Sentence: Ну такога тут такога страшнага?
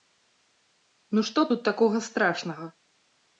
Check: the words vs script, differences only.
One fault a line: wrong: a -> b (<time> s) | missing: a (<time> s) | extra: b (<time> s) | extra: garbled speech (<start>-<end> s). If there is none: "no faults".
wrong: такога -> што (1.3 s)